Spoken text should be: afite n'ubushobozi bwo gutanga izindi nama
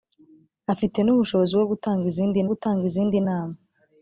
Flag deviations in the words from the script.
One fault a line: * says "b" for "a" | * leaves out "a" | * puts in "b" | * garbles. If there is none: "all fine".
* puts in "gutanga izindi"